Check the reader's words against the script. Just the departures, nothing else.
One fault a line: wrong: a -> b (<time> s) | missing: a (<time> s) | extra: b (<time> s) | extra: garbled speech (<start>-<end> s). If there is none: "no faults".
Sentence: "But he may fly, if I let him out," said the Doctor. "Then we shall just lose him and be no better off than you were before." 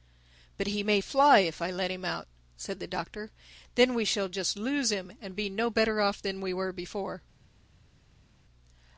wrong: you -> we (6.4 s)